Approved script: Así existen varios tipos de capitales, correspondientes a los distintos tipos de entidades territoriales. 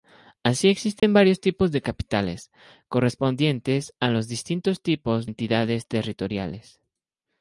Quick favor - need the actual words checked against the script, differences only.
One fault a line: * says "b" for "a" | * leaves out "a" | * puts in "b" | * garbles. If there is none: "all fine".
* leaves out "de"